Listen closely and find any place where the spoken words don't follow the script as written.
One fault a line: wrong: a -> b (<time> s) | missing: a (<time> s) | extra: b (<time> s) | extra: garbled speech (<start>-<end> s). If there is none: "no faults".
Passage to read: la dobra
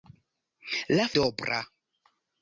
no faults